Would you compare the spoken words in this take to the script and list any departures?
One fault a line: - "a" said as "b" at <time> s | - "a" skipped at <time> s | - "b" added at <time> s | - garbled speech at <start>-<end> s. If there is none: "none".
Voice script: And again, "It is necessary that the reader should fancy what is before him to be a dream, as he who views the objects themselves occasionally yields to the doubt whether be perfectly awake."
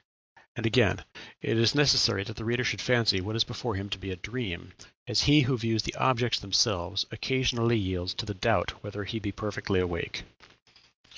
- "he" added at 9.0 s